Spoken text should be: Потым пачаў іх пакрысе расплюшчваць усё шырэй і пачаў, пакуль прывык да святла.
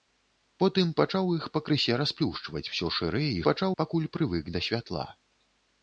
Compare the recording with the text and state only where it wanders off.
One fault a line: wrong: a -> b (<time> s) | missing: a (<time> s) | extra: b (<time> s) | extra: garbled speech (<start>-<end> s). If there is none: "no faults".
no faults